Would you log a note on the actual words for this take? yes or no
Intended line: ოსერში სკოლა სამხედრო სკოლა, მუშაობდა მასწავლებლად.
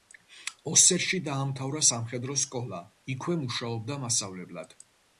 yes